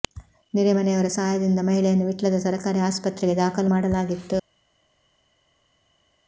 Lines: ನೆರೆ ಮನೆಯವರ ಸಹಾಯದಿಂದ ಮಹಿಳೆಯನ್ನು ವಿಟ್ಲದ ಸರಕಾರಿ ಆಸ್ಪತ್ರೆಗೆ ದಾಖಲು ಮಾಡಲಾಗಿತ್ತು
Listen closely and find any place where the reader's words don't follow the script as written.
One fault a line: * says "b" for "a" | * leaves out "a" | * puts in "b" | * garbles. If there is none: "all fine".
all fine